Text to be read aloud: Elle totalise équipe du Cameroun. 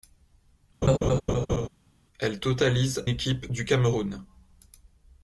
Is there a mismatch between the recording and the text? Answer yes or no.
no